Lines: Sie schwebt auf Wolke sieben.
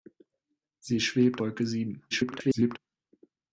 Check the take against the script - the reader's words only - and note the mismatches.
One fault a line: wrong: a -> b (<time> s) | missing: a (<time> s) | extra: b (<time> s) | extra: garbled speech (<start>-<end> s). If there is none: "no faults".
missing: auf (1.4 s)
extra: garbled speech (2.1-2.8 s)